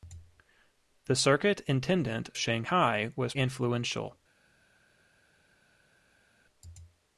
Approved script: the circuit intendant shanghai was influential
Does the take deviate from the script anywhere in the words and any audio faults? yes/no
no